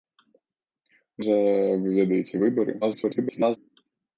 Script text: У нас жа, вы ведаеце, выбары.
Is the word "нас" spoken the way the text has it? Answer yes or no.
no